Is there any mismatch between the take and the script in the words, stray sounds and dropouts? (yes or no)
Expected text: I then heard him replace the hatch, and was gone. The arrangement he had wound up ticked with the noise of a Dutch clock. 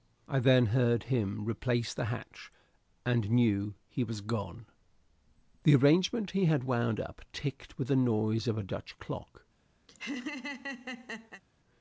yes